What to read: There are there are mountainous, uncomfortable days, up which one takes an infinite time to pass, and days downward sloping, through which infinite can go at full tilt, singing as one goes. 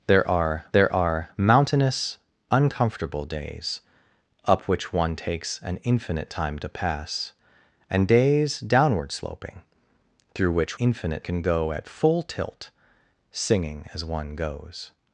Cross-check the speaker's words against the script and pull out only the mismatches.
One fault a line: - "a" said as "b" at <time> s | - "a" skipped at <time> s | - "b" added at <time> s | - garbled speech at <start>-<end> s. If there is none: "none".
none